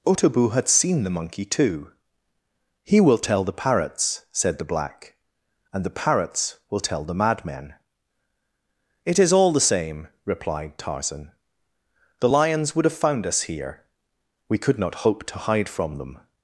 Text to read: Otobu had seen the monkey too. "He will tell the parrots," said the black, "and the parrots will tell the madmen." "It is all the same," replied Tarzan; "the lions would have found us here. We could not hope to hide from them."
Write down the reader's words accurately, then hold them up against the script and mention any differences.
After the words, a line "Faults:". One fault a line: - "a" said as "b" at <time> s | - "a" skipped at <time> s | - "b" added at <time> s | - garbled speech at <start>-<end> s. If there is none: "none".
Otobu had seen the monkey too. "He will tell the parrots," said the black, "and the parrots will tell the madmen." "It is all the same," replied Tarzan; "the lions would have found us here. We could not hope to hide from them."
Faults:
none